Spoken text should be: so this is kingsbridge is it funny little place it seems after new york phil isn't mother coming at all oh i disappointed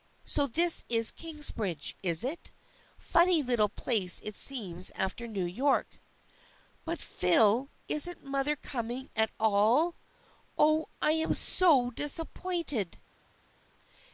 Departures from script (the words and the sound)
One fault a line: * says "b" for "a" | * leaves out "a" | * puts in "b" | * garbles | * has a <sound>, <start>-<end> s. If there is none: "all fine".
* puts in "but"
* puts in "am so"